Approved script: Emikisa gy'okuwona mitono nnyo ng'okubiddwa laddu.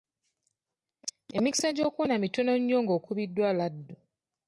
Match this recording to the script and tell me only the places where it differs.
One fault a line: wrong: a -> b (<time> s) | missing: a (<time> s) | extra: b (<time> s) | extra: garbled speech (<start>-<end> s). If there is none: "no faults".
no faults